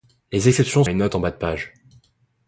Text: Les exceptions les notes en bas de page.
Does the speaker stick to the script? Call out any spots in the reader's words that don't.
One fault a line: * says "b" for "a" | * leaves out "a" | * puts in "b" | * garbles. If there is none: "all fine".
all fine